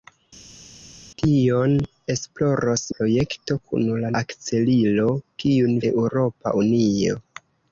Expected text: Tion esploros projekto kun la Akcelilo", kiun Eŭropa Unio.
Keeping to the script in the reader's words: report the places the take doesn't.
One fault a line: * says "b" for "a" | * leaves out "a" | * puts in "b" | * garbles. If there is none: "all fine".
all fine